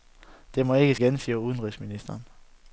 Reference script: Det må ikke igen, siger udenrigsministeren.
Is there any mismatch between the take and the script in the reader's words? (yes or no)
no